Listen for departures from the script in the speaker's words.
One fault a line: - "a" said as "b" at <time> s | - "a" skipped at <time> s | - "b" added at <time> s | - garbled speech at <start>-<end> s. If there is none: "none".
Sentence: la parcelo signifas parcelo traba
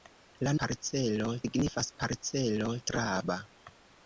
none